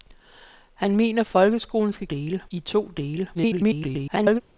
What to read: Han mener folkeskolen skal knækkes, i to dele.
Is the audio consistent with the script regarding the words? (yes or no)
no